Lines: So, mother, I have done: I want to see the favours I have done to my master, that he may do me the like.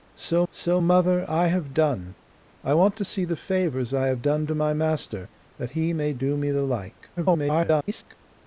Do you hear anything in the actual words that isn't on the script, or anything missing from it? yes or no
yes